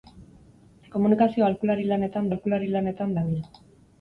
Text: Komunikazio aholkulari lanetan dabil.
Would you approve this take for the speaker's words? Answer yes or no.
no